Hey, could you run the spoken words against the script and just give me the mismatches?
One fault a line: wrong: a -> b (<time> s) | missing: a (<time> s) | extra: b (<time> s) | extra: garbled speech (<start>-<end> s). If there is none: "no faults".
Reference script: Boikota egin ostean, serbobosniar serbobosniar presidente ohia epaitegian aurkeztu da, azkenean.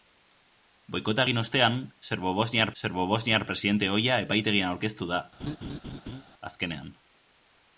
no faults